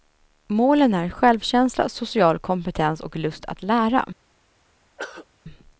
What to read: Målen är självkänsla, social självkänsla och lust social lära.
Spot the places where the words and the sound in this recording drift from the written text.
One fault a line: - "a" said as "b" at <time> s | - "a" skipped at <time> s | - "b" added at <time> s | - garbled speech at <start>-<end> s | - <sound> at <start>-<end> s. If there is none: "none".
- "självkänsla" said as "kompetens" at 2.4 s
- "social" said as "att" at 3.4 s
- throat clearing at 5.0-5.3 s